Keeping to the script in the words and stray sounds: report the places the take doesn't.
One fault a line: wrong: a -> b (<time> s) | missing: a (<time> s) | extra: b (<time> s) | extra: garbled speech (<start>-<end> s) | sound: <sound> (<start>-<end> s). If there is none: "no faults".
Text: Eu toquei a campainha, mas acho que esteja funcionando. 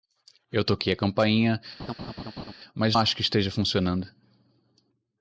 sound: laugh (1.8-2.5 s)